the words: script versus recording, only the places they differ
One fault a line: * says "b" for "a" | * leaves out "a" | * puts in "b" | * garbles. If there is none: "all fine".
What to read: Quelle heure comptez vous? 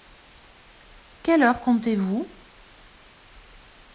all fine